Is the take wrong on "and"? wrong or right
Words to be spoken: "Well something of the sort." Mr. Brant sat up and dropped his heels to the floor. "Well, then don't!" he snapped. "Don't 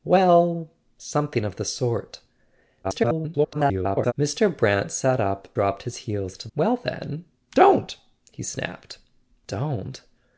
wrong